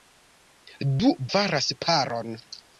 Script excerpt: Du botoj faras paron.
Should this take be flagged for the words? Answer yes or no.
yes